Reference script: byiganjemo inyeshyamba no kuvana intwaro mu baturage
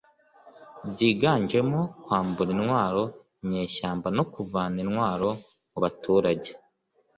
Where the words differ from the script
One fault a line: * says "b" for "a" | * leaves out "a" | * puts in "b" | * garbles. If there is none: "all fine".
* puts in "kwambura intwaro"